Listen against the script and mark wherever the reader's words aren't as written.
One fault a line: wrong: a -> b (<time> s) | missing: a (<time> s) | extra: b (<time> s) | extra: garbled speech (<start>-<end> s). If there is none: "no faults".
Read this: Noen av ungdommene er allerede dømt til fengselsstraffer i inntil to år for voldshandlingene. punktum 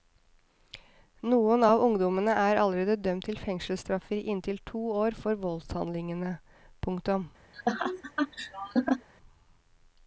no faults